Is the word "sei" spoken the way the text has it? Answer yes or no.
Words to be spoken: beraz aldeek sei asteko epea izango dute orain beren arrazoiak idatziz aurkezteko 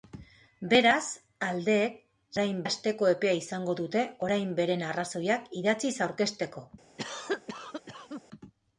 no